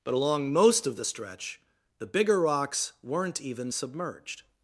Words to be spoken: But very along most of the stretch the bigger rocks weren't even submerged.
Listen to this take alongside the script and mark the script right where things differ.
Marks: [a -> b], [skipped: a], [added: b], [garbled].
But [skipped: very] along most of the stretch the bigger rocks weren't even submerged.